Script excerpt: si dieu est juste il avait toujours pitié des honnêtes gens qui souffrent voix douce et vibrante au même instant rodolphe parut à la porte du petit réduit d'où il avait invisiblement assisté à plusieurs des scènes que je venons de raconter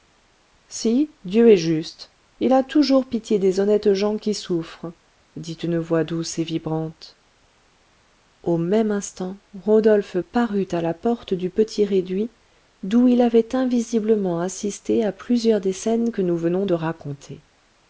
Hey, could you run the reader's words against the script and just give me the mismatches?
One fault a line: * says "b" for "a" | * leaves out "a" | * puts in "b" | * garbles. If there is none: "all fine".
* says "a" for "avait"
* puts in "dit une"
* says "nous" for "je"